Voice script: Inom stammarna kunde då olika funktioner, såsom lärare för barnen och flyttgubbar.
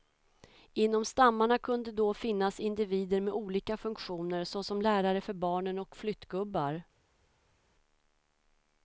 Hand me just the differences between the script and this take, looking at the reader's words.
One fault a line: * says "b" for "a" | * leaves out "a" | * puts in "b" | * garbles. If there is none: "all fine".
* puts in "finnas individer med"